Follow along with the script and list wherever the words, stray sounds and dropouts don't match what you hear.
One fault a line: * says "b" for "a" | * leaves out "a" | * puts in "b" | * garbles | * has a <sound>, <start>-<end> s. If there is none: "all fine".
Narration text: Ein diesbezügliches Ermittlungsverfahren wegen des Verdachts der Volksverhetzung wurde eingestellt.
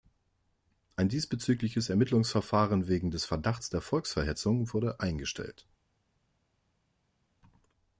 all fine